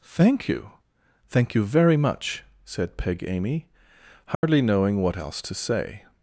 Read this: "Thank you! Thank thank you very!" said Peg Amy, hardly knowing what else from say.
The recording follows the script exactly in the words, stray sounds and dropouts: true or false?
false